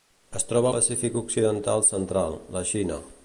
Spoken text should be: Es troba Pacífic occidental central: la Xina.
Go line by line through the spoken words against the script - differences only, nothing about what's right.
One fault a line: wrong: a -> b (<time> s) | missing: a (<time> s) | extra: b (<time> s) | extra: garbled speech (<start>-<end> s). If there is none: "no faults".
no faults